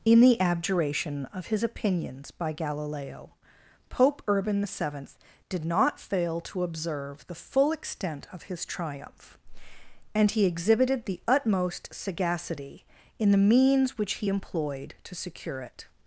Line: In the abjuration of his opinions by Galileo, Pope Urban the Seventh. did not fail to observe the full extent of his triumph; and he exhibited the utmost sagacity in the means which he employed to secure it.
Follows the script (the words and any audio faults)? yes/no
yes